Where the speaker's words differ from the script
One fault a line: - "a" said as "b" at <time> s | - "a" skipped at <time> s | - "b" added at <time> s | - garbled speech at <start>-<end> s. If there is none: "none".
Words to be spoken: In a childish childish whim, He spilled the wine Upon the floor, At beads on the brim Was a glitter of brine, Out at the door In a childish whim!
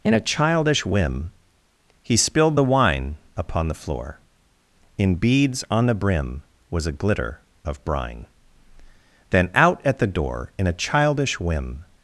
- "childish" skipped at 0.8 s
- "At" said as "In" at 5.0 s
- "Then" added at 9.3 s